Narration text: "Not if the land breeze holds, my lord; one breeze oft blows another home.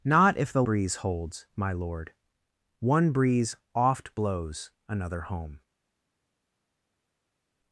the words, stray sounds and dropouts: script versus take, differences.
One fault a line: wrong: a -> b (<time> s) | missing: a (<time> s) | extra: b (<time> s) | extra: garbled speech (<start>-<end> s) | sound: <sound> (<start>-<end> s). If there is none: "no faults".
missing: land (0.6 s)